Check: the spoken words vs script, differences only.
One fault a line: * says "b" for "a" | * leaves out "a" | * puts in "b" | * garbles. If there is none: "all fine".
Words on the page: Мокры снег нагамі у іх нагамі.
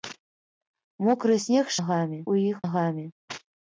all fine